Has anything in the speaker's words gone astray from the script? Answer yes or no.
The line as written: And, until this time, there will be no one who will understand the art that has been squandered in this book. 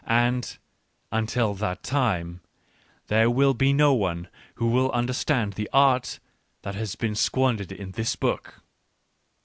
yes